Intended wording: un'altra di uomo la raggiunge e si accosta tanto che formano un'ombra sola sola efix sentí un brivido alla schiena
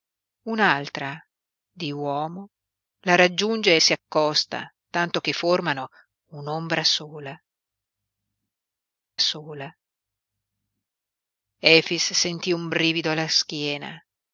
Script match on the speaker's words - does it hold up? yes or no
yes